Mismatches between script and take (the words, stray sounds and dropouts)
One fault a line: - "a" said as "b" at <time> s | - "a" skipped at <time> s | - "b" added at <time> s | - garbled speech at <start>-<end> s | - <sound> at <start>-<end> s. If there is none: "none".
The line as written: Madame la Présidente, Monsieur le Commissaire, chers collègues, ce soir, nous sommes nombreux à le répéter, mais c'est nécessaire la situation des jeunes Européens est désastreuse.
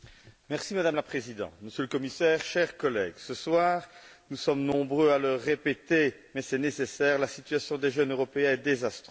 none